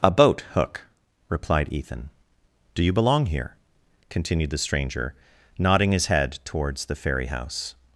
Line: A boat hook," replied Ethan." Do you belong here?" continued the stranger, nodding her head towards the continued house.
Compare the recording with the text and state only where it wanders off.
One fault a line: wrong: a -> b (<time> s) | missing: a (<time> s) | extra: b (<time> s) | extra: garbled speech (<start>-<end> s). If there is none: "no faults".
wrong: her -> his (5.9 s)
wrong: continued -> ferry (6.9 s)